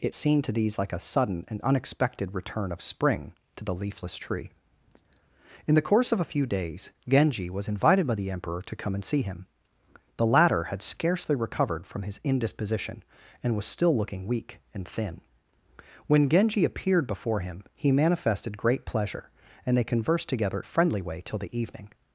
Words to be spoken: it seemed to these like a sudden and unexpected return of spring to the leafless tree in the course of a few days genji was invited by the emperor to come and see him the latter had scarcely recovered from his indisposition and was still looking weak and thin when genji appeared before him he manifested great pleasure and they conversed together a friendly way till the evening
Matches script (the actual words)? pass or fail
pass